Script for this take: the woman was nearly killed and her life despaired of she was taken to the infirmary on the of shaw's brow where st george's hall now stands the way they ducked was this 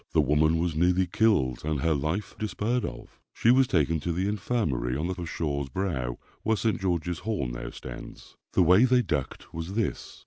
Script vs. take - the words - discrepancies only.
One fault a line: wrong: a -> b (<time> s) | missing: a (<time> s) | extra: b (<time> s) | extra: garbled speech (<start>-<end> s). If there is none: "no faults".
no faults